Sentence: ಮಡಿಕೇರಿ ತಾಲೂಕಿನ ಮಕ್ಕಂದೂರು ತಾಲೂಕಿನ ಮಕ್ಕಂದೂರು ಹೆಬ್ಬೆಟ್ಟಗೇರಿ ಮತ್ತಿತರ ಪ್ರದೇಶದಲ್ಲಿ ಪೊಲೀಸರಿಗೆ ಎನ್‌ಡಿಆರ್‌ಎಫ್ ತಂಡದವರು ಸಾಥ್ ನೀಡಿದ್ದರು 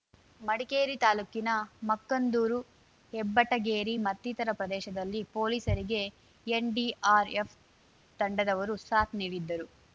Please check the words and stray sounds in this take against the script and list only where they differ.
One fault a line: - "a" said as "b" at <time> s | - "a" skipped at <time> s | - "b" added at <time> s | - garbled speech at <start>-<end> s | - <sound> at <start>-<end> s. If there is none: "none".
- "ತಾಲೂಕಿನ ಮಕ್ಕಂದೂರು" skipped at 2.6 s